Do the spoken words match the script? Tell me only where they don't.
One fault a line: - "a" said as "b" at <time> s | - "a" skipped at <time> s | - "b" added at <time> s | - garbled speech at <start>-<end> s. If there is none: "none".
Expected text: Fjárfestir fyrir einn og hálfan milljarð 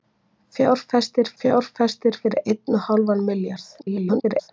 - "fjárfestir" added at 1.4 s
- garbled speech at 3.8-4.5 s